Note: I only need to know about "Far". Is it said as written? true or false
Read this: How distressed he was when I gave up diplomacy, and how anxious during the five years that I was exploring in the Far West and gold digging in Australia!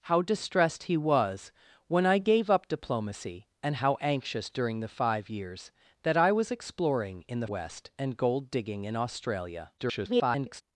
false